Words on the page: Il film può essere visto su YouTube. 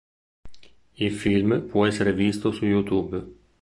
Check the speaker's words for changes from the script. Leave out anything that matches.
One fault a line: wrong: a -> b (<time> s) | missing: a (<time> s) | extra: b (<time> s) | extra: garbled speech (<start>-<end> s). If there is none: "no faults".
no faults